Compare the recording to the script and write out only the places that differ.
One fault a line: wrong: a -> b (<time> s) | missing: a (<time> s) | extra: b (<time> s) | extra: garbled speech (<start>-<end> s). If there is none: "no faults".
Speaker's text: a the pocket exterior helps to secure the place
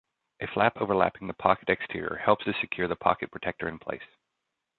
extra: flap overlapping (0.5 s)
extra: pocket protector in (2.9 s)